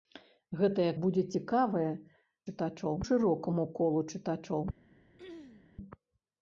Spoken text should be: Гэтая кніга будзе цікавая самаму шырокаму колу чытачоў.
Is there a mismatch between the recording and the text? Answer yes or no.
yes